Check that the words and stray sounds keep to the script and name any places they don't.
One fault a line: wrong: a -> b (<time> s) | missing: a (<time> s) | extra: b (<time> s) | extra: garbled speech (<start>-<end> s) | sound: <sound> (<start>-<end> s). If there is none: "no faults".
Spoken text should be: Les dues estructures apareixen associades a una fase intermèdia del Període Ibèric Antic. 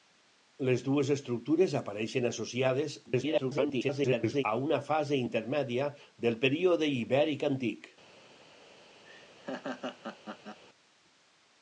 extra: garbled speech (3.1-4.4 s)
sound: laugh (9.1-10.6 s)